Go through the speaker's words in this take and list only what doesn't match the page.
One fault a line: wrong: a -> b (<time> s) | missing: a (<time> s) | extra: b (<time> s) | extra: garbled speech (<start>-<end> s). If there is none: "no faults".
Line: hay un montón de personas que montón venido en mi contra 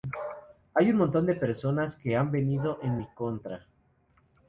wrong: montón -> han (2.2 s)